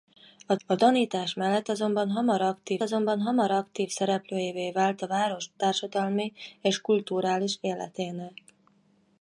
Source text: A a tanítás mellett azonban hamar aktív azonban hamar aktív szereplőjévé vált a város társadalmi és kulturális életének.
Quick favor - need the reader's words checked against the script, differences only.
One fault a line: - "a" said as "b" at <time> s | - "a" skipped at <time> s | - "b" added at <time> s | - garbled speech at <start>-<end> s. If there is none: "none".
none